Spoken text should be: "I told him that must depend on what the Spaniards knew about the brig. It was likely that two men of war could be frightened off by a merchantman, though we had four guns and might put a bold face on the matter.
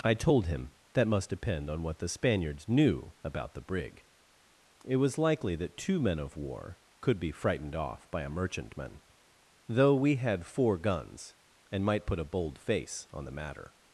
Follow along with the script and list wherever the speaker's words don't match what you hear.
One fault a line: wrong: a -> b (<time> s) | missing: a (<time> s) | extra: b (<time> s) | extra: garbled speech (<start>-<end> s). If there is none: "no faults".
no faults